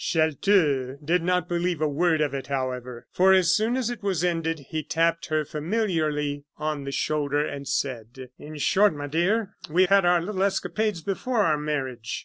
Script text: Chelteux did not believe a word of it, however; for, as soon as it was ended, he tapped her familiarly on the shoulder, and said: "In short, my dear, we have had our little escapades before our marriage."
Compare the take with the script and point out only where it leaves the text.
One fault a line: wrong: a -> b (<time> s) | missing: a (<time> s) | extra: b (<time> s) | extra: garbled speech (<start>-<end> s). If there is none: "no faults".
missing: have (9.8 s)